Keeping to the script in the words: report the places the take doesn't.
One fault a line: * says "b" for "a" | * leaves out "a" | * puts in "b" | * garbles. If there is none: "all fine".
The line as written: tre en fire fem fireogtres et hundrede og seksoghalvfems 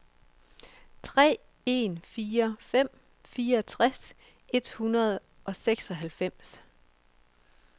all fine